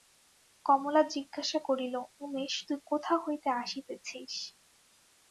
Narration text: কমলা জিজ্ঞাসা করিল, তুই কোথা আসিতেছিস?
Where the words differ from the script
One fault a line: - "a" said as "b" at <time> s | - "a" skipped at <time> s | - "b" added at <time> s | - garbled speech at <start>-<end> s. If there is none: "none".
- "উমেশ" added at 2.2 s
- "হইতে" added at 3.2 s